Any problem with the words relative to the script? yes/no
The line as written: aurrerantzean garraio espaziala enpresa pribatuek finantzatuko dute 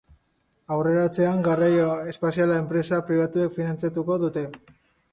no